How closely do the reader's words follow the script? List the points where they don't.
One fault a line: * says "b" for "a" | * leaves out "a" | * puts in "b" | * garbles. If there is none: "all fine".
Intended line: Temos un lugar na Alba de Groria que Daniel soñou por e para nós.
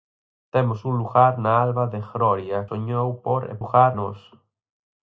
* leaves out "que Daniel"
* says "lugar" for "para"